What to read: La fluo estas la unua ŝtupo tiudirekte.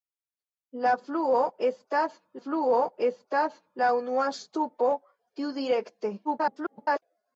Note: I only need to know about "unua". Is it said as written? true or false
true